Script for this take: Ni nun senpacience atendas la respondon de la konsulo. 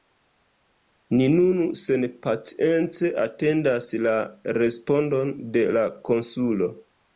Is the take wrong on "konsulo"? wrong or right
right